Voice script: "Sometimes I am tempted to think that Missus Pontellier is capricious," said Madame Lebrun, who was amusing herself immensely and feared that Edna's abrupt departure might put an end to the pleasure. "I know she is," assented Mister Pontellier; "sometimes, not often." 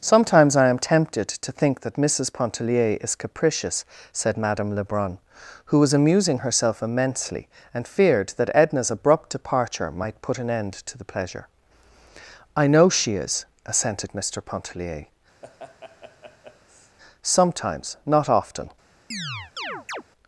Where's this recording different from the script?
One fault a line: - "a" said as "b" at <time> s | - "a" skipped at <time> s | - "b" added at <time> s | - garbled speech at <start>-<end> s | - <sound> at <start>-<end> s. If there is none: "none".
- laugh at 15.4-17.0 s
- chirp at 19.1-20.0 s